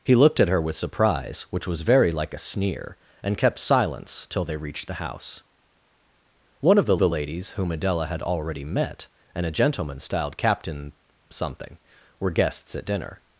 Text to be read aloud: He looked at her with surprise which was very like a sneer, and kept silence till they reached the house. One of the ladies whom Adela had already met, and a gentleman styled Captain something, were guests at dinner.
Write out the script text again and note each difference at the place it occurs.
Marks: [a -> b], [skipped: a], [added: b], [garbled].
He looked at her with surprise which was very like a sneer, and kept silence till they reached the house. One of the [added: the] ladies whom Adela had already met, and a gentleman styled Captain something, were guests at dinner.